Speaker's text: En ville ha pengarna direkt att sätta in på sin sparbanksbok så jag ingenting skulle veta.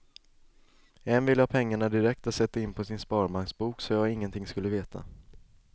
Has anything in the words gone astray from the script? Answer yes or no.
no